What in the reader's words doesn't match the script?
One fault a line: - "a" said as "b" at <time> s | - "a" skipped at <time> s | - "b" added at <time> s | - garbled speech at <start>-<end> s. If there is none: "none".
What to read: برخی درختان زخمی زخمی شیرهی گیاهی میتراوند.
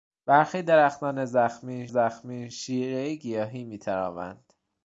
none